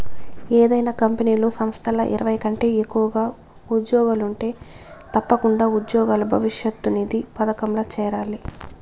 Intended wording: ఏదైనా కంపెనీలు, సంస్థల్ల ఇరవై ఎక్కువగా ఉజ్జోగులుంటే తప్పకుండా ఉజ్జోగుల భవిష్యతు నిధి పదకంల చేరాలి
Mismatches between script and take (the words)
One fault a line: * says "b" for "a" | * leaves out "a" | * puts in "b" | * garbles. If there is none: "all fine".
* puts in "కంటే"